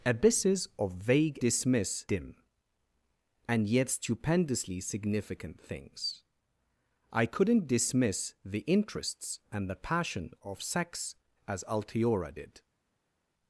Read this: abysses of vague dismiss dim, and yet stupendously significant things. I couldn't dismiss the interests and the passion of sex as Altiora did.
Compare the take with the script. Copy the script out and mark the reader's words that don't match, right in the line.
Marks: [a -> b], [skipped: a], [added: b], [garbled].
abysses of vague dismiss dim, and yet stupendously significant things. I couldn't dismiss the interests and the passion of sex as Altiora did.